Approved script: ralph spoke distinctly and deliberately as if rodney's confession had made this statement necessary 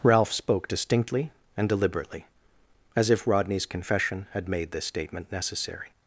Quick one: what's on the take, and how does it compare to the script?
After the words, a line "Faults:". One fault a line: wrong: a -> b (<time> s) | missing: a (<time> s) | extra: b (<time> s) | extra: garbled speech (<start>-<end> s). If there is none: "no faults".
ralph spoke distinctly and deliberately as if rodney's confession had made this statement necessary
Faults:
no faults